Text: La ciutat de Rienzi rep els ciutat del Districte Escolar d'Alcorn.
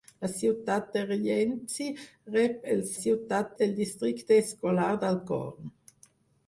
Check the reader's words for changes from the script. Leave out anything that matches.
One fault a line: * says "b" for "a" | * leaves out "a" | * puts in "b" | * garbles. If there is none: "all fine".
all fine